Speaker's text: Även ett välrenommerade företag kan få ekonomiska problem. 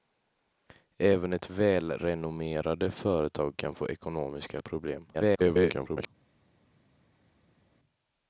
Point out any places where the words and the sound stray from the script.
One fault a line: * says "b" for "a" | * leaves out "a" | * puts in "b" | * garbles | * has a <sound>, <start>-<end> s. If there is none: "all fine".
* garbles